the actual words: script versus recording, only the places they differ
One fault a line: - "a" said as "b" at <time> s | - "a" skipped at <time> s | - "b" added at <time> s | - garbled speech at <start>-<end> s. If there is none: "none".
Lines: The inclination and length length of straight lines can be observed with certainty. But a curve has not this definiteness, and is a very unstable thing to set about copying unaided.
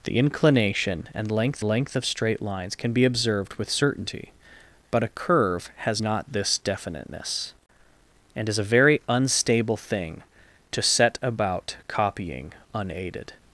none